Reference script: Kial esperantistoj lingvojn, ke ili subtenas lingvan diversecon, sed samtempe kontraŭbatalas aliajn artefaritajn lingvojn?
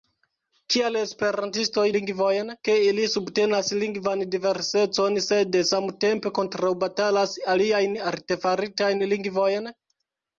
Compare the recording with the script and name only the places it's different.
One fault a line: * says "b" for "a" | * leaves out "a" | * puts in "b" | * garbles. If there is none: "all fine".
all fine